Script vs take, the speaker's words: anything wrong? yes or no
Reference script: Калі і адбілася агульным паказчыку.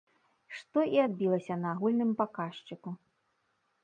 yes